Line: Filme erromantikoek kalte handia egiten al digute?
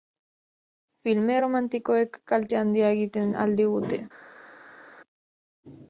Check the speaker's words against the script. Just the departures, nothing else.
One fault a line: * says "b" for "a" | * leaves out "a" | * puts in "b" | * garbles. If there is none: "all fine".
all fine